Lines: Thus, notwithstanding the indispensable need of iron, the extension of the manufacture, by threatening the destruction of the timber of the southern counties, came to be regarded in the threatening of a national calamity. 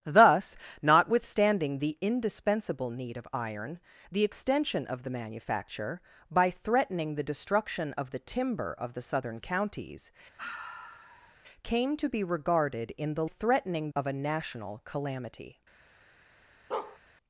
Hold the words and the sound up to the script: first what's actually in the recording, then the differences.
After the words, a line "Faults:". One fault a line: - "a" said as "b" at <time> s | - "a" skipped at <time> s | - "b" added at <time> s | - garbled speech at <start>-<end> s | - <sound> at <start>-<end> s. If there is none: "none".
Thus, notwithstanding the indispensable need of iron, the extension of the manufacture, by threatening the destruction of the timber of the southern counties, came to be regarded in the threatening of a national calamity.
Faults:
- sigh at 10.4-11.3 s
- bark at 16.7-17.0 s